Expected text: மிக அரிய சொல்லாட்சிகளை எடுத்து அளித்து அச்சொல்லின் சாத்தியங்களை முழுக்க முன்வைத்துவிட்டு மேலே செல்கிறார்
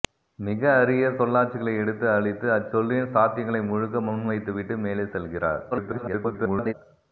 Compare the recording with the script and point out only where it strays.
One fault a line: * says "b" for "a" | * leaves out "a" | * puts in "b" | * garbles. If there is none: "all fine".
* garbles